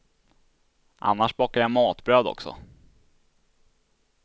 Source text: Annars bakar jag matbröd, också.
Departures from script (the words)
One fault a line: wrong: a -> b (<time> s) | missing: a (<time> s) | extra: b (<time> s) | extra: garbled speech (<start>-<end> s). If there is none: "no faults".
no faults